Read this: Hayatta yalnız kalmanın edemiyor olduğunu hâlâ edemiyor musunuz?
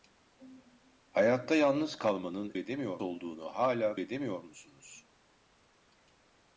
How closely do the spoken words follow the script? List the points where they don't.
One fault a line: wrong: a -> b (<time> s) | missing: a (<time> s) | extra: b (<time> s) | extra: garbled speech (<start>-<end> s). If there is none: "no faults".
no faults